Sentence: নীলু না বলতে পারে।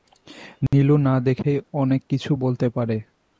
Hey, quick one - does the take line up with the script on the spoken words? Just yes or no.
no